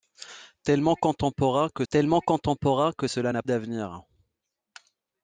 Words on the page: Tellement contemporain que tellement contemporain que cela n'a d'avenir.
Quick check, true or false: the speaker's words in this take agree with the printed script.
true